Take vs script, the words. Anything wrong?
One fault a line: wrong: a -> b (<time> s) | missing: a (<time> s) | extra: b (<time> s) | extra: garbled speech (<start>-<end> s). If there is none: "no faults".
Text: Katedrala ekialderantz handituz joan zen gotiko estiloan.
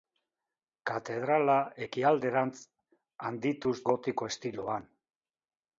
missing: joan zen (3.8 s)